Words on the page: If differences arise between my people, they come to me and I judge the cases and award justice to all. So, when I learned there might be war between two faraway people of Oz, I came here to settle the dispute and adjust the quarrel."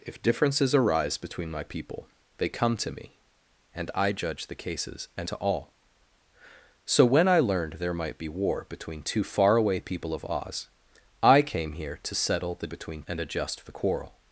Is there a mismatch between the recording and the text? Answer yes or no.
yes